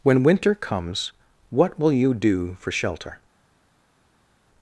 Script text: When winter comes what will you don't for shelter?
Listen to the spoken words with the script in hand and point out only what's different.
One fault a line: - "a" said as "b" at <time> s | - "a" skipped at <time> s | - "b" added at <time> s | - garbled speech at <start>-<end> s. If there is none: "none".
- "don't" said as "do" at 2.1 s